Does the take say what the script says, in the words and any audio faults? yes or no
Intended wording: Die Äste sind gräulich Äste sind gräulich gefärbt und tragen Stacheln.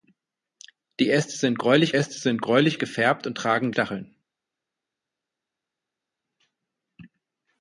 yes